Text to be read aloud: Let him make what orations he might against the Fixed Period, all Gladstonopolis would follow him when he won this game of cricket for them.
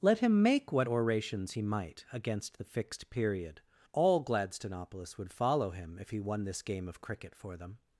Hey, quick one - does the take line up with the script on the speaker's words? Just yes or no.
no